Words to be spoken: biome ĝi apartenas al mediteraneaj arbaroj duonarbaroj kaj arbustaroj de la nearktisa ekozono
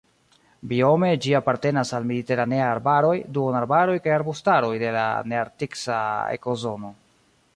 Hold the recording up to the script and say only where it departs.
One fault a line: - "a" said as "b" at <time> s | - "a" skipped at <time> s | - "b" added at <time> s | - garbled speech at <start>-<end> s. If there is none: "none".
none